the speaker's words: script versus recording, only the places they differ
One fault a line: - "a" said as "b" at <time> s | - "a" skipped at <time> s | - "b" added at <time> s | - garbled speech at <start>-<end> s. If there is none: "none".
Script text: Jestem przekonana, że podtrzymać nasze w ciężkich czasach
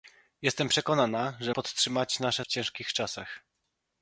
none